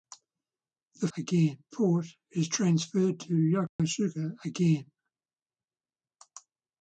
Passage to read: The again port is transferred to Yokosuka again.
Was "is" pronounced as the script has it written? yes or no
yes